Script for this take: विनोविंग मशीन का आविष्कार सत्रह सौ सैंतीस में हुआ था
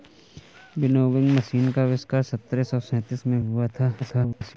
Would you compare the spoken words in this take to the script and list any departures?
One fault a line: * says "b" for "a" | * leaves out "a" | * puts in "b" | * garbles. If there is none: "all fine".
* garbles